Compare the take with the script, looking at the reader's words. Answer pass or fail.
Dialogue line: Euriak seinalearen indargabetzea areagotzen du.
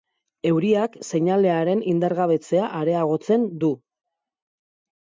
pass